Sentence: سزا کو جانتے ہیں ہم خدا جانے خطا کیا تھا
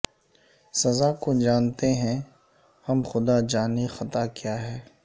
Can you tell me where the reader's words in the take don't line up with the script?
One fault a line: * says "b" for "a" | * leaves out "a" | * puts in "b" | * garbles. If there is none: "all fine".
* says "ہے" for "تھا"